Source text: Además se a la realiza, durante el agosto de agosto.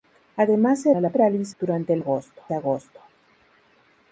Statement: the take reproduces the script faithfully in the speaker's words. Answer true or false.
true